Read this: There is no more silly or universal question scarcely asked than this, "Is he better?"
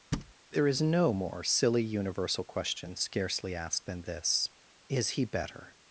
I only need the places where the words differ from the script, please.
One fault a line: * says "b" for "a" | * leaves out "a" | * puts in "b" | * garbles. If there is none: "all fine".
* leaves out "or"